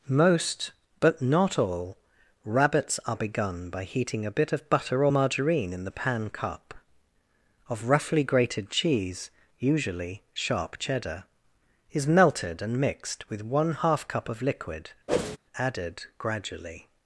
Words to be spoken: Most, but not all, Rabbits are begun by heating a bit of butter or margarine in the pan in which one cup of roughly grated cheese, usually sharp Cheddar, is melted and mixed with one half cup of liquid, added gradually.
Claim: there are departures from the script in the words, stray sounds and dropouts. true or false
true